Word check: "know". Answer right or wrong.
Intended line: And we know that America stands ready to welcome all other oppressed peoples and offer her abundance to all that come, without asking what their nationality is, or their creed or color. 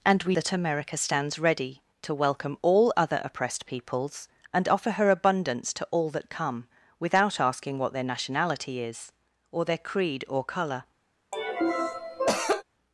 wrong